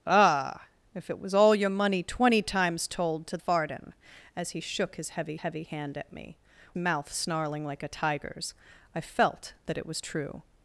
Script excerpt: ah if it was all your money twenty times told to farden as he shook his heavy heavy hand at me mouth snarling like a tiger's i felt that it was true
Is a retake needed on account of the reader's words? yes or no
no